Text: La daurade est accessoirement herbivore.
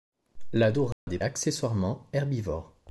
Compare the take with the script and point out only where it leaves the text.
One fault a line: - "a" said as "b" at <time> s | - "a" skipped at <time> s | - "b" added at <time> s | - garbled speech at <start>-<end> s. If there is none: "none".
none